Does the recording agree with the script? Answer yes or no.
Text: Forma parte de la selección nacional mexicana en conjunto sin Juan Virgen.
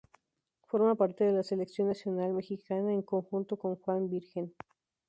no